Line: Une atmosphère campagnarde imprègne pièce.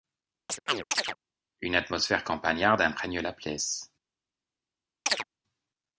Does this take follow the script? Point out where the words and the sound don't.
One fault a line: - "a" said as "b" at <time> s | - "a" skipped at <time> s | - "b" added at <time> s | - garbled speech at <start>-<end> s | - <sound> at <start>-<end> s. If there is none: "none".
- chirp at 0.5-1.2 s
- "la" added at 3.2 s
- chirp at 5.1-5.2 s